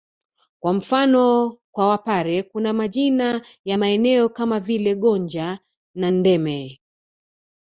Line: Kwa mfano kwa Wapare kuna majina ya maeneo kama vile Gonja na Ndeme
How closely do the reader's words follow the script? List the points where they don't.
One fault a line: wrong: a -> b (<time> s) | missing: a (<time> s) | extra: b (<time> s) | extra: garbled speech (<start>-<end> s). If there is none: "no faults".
no faults